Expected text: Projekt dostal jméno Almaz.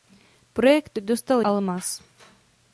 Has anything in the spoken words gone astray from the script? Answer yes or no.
yes